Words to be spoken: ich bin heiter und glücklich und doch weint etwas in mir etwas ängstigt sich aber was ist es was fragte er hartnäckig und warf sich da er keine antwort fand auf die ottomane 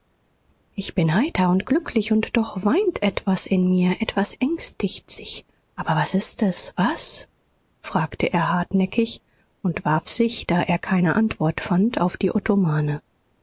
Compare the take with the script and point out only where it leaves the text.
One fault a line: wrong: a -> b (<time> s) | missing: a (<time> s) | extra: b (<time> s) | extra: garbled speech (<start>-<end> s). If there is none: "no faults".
no faults